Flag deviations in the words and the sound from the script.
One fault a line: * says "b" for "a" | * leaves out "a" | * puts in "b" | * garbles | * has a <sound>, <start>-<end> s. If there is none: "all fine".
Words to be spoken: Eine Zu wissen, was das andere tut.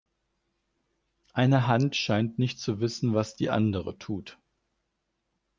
* puts in "Hand scheint nicht"
* says "die" for "das"